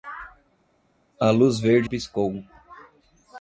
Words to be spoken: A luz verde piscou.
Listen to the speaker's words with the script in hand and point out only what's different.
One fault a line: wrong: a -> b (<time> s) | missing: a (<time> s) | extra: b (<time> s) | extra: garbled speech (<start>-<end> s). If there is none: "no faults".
no faults